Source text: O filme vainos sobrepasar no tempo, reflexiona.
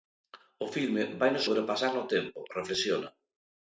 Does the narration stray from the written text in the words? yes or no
no